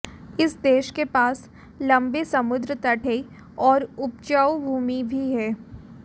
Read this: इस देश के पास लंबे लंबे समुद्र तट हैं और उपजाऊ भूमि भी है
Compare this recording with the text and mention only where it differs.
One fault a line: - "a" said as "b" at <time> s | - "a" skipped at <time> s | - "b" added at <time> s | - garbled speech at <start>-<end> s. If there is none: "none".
- "लंबे" skipped at 2.2 s